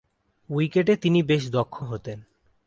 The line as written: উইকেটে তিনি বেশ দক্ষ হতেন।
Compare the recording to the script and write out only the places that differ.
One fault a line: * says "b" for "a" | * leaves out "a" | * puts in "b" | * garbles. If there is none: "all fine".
all fine